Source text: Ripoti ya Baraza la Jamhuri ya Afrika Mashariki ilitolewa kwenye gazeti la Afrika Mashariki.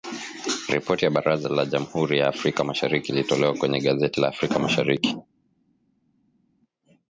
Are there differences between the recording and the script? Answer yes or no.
no